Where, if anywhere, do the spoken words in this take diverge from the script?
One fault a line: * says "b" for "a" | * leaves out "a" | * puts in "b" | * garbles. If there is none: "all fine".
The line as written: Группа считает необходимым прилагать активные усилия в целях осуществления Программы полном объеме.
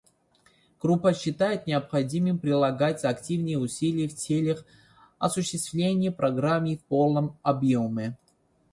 * puts in "в"